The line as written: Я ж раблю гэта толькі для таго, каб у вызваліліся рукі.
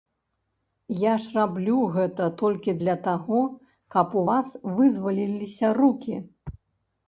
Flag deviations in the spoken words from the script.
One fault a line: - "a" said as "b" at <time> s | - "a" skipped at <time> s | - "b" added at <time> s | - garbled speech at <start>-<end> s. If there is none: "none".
- "вас" added at 4.3 s